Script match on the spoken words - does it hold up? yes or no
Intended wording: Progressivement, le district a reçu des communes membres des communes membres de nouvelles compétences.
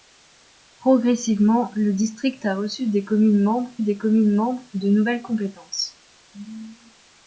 yes